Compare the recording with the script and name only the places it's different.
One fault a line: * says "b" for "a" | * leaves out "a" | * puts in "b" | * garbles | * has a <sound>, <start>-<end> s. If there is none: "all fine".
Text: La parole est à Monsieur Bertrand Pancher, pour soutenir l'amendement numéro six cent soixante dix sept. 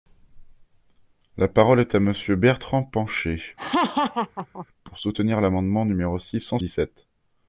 * has a laugh, 3.6-4.7 s
* leaves out "soixante"